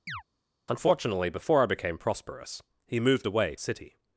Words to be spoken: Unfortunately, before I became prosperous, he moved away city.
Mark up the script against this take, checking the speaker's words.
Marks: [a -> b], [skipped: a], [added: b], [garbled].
Unfortunately, before I became prosperous, he moved away city.